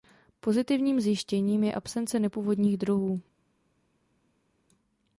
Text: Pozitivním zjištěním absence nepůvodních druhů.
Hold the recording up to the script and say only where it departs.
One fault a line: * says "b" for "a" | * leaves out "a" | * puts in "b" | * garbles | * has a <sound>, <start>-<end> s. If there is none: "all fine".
* puts in "je"